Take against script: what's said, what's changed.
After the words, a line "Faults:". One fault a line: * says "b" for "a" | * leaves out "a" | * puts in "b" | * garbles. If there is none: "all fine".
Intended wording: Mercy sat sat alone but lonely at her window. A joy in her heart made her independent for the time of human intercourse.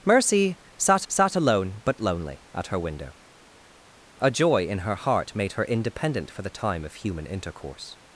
Mercy sat sat alone but lonely at her window. A joy in her heart made her independent for the time of human intercourse.
Faults:
all fine